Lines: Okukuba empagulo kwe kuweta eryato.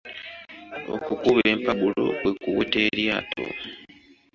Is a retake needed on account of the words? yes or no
no